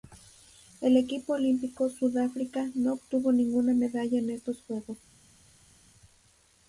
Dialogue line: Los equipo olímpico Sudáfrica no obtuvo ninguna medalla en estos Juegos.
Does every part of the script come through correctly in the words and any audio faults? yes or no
no